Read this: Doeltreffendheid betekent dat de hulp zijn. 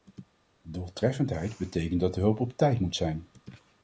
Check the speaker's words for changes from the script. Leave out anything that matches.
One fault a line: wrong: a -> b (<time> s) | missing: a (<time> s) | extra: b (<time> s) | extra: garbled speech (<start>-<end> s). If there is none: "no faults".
extra: op tijd moet (2.4 s)